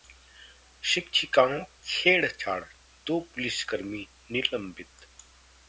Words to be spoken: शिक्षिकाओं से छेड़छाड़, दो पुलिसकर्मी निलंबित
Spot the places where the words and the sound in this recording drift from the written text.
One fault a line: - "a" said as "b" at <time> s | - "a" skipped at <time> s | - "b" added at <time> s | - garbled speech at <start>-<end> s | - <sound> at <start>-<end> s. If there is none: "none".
- "से" skipped at 1.6 s